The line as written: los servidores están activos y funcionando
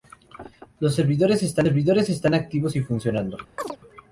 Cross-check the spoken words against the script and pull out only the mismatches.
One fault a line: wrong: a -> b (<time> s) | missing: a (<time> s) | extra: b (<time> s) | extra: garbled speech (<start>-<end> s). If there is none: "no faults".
extra: servidores están (1.6 s)